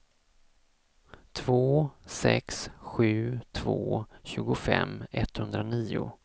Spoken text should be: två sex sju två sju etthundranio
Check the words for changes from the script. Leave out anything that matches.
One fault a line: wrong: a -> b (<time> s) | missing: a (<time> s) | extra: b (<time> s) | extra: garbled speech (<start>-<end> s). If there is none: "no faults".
wrong: sju -> tjugofem (4.2 s)